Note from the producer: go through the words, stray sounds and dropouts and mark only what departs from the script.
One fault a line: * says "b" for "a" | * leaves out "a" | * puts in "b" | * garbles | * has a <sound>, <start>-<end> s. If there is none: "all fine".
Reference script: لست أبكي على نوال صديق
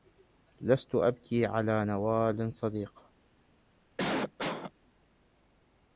* has a cough, 4.0-4.7 s